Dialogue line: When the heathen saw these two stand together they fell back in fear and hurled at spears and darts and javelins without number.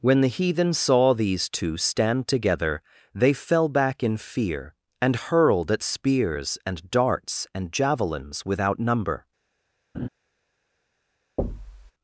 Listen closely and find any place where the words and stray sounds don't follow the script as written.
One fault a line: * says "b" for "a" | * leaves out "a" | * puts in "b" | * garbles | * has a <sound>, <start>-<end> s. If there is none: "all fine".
* has a laugh, 9.9-10.1 s
* has a thud, 11.4-11.9 s